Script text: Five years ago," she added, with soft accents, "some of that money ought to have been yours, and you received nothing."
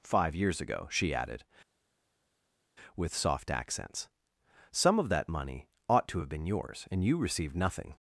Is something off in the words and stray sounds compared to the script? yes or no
no